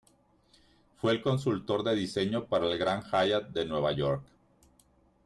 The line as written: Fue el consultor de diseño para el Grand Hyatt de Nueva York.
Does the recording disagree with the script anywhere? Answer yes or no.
no